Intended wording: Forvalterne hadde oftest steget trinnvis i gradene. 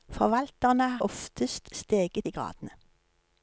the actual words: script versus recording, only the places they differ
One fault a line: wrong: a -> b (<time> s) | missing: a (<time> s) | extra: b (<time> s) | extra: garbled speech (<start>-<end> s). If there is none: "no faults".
missing: hadde (1.0 s)
missing: trinnvis (2.3 s)